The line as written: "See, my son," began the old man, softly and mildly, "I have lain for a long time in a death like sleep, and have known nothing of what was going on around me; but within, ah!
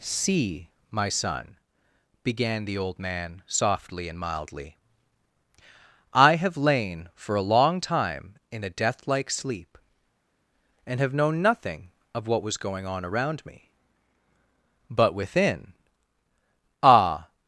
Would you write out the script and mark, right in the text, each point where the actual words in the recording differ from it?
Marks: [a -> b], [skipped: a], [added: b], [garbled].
"See, my son," began the old man, softly and mildly, "I have lain for a long time in a death like sleep, and have known nothing of what was going on around me; but within, ah!